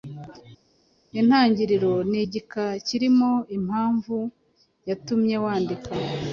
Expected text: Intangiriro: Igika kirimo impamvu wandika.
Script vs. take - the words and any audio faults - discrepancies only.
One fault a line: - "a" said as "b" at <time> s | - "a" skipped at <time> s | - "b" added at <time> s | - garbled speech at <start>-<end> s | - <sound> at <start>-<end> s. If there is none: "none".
- "Ni" added at 2.1 s
- "yatumye" added at 4.9 s